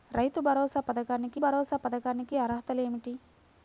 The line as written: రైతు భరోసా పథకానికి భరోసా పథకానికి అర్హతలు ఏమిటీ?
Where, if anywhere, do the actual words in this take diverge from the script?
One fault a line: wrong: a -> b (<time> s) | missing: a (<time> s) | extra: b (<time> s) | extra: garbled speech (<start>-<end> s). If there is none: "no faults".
no faults